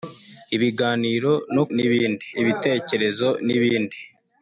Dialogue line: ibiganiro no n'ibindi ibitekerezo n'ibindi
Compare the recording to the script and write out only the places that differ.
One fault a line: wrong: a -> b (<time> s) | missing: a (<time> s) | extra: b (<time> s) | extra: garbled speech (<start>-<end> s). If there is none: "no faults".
no faults